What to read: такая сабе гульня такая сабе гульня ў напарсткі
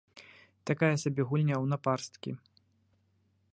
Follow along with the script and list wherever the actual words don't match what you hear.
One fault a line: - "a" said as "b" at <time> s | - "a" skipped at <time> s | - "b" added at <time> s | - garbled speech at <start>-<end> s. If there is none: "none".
- "такая сабе гульня" skipped at 1.6 s